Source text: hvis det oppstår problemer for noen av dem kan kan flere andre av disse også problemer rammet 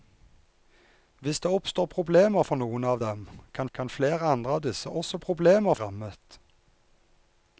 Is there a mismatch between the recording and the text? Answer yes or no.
no